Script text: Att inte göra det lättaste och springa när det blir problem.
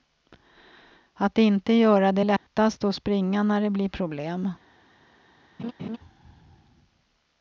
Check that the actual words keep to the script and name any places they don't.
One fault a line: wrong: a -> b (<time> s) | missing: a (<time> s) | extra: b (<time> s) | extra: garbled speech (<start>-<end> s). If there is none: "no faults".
no faults